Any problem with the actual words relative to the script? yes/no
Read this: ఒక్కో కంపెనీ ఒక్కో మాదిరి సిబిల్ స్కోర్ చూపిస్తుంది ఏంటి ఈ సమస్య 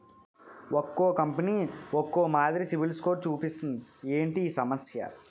no